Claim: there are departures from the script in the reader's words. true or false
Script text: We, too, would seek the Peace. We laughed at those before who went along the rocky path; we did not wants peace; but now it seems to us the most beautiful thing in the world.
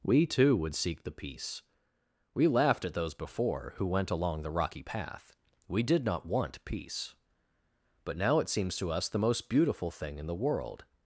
true